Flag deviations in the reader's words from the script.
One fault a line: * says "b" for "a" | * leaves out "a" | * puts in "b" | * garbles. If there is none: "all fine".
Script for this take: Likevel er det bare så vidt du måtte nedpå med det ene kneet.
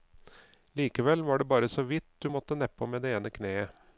* says "var" for "er"